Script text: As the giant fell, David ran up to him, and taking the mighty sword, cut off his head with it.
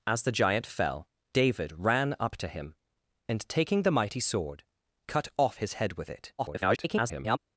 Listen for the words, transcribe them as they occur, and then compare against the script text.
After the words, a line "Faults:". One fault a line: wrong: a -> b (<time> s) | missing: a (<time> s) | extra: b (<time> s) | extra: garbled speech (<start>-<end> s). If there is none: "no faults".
As the giant fell, David ran up to him, and taking the mighty sword, cut off his head with it. [garbled]
Faults:
extra: garbled speech (6.4-7.4 s)